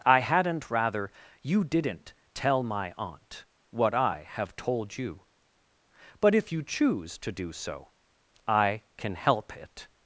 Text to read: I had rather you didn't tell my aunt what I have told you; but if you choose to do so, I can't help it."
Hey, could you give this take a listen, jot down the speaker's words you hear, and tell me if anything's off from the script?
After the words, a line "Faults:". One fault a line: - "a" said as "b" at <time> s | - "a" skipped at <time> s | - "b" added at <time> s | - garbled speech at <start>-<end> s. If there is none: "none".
I hadn't rather you didn't tell my aunt what I have told you; but if you choose to do so, I can help it."
Faults:
- "had" said as "hadn't" at 0.2 s
- "can't" said as "can" at 9.0 s